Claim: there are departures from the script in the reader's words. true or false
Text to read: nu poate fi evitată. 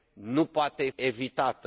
true